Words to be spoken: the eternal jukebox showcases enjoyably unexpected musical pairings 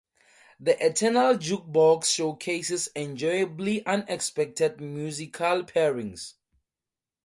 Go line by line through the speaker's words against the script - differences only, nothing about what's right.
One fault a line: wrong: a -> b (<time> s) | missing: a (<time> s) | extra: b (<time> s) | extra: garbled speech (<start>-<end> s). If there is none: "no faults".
no faults